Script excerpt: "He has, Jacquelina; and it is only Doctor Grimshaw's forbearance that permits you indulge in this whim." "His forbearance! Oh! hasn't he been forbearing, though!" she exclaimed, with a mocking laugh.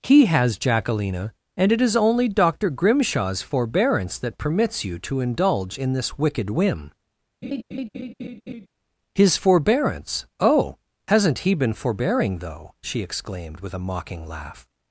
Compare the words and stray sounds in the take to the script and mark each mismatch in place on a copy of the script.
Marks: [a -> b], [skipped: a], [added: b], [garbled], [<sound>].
"He has, Jacquelina; and it is only Doctor Grimshaw's forbearance that permits you [added: to] indulge in this [added: wicked] whim." [laugh] "His forbearance! Oh! hasn't he been forbearing, though!" she exclaimed, with a mocking laugh.